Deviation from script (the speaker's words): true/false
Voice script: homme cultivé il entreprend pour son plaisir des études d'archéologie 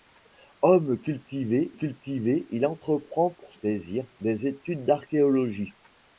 true